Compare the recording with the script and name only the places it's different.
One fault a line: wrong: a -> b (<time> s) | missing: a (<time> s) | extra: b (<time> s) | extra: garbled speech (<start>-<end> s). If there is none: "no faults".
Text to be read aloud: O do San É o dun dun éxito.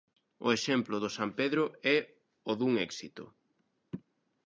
extra: exemplo (0.6 s)
extra: Pedro (1.4 s)
missing: dun (2.7 s)